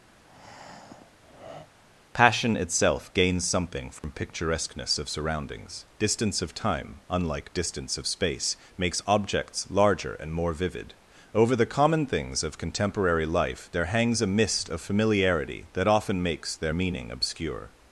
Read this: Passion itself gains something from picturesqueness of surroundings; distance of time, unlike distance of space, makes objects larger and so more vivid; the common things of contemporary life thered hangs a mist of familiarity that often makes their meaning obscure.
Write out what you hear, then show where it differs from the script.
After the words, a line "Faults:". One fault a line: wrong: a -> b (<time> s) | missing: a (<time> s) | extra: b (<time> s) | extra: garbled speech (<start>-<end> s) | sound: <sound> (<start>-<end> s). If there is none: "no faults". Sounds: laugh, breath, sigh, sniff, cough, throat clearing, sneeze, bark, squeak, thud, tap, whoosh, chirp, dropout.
Passion itself gains something from picturesqueness of surroundings; distance of time, unlike distance of space, makes objects larger and more vivid; over the common things of contemporary life there hangs a mist of familiarity that often makes their meaning obscure.
Faults:
sound: breath (0.1-1.7 s)
sound: dropout (4.0-4.0 s)
missing: so (10.3 s)
extra: over (11.4 s)
wrong: thered -> there (13.7 s)